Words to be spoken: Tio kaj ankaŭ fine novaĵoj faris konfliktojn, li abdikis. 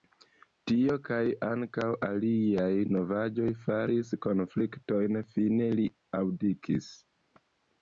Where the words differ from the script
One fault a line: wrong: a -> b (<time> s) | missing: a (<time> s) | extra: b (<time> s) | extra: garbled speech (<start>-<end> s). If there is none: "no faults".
wrong: fine -> aliaj (2.1 s)
extra: fine (5.4 s)